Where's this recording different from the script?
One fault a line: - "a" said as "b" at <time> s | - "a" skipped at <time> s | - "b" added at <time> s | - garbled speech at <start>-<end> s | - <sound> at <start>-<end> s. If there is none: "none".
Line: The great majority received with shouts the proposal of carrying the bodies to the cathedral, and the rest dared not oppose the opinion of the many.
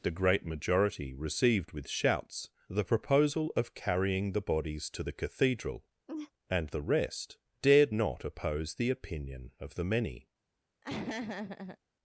- laugh at 6.1-6.3 s
- laugh at 10.8-11.8 s